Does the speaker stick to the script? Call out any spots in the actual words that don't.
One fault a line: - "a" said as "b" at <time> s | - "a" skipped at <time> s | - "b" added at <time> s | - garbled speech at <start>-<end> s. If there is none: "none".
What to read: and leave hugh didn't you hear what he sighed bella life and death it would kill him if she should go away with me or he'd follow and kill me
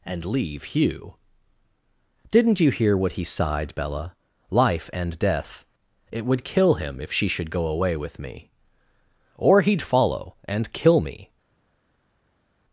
none